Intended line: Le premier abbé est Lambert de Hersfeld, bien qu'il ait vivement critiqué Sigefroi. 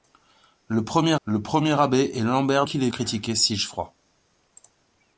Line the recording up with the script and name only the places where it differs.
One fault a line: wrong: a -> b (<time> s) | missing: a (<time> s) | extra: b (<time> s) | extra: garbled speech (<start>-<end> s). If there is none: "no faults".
extra: le premier (1.2 s)
missing: de Hersfeld bien (2.7 s)
missing: vivement (2.9 s)